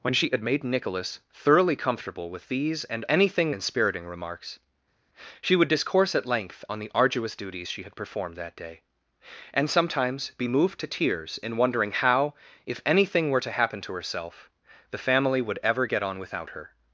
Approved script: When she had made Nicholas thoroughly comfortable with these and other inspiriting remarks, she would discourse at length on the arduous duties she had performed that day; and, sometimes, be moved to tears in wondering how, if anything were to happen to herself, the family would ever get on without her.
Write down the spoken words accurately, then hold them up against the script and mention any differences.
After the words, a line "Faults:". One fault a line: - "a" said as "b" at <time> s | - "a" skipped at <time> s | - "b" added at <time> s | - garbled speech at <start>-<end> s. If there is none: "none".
When she had made Nicholas thoroughly comfortable with these and anything inspiriting remarks, she would discourse at length on the arduous duties she had performed that day; and, sometimes, be moved to tears in wondering how, if anything were to happen to herself, the family would ever get on without her.
Faults:
- "other" said as "anything" at 3.1 s